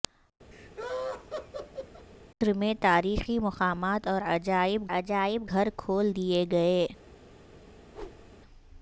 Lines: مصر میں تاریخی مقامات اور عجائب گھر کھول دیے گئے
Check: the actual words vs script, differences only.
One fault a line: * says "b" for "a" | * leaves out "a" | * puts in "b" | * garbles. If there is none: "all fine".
* puts in "عجائب"